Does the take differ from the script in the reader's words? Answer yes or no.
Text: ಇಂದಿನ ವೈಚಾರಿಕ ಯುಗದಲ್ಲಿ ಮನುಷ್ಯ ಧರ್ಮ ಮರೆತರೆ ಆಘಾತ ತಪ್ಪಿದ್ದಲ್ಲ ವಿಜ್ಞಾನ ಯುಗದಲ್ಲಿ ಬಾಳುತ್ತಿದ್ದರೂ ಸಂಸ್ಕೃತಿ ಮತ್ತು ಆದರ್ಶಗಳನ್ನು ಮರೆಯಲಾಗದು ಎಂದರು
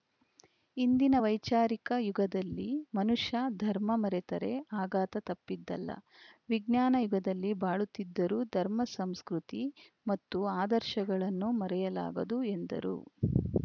yes